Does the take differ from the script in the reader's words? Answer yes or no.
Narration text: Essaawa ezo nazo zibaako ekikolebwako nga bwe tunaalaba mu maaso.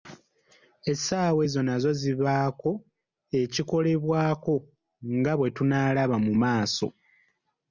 no